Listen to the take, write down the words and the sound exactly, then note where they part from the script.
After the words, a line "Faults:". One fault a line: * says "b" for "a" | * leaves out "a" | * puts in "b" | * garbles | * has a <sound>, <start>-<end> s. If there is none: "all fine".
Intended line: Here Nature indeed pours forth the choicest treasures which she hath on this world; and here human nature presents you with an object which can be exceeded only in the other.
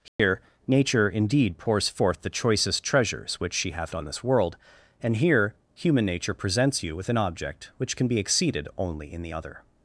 Here Nature indeed pours forth the choicest treasures which she hath on this world; and here human nature presents you with an object which can be exceeded only in the other.
Faults:
* has a dropout, 0.1-0.2 s